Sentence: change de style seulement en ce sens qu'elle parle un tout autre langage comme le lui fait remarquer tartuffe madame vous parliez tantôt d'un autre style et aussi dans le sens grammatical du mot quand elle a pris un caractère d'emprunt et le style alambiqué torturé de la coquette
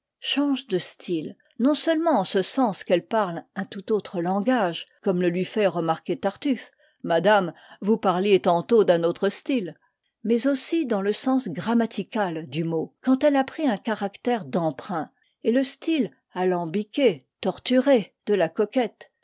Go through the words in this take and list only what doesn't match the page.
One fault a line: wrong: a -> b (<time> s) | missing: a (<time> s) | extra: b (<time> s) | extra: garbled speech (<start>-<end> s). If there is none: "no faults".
extra: non (1.6 s)
wrong: et -> mais (10.2 s)